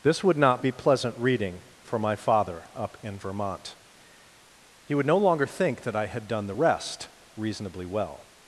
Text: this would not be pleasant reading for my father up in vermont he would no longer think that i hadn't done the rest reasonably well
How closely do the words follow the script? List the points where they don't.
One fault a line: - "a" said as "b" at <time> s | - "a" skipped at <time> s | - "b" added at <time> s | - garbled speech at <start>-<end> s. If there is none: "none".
- "hadn't" said as "had" at 6.1 s